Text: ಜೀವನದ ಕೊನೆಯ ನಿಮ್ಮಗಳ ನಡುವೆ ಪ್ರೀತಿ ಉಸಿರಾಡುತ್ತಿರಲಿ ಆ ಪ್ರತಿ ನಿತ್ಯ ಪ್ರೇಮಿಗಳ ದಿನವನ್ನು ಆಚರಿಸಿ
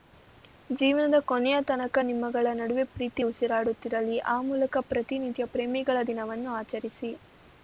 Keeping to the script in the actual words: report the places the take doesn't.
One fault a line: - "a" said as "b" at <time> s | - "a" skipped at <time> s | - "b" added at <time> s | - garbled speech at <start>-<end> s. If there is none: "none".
- "ತನಕ" added at 1.7 s
- "ಮೂಲಕ" added at 4.5 s